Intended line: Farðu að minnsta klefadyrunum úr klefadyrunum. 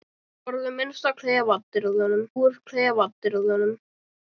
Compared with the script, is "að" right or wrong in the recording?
right